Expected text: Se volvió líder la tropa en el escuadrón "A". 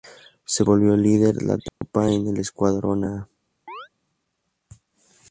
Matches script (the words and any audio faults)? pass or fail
fail